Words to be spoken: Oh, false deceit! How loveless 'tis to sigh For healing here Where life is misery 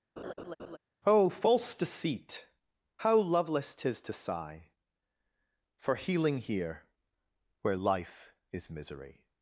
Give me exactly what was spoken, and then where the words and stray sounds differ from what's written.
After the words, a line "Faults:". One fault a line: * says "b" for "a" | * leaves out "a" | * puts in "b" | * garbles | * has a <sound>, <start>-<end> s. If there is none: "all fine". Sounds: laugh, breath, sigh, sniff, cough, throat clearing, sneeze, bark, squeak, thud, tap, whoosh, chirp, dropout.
Oh, false deceit! How loveless 'tis to sigh For healing here Where life is misery
Faults:
* has a laugh, 0.2-0.8 s